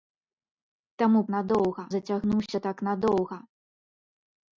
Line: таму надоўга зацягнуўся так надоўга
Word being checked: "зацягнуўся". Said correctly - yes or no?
yes